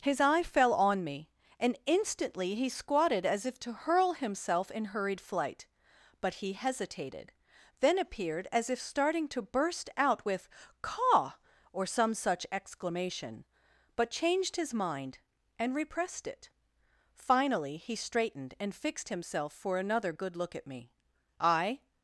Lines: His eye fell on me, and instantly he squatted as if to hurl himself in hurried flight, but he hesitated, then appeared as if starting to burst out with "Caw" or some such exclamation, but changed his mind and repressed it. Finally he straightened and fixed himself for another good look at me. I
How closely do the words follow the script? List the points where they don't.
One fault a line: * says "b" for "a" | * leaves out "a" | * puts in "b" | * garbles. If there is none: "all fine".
all fine